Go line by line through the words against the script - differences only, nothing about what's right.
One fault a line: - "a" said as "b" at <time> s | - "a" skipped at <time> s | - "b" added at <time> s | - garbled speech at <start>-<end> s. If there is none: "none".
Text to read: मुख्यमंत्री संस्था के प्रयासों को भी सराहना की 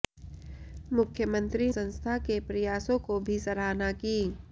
none